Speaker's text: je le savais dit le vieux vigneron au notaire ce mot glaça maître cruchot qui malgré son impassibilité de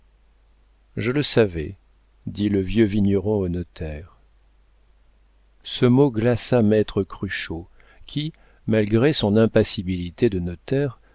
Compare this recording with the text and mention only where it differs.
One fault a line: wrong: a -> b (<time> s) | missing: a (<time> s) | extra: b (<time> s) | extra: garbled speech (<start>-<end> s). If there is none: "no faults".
no faults